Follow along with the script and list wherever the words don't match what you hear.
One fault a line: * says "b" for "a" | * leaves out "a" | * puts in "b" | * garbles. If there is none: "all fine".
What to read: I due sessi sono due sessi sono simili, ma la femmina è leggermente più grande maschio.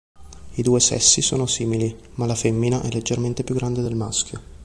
* leaves out "due sessi sono"
* puts in "del"